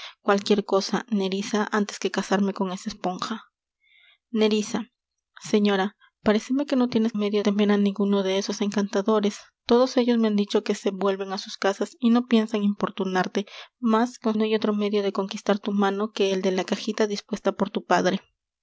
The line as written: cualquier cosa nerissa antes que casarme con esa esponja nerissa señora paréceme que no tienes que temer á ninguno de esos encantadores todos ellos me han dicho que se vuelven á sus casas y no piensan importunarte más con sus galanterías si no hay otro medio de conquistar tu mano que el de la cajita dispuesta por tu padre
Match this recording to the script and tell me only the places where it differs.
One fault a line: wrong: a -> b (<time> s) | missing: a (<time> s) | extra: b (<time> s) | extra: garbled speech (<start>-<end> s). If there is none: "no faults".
wrong: que -> medio (7.1 s)
missing: sus galanterías si (14.4 s)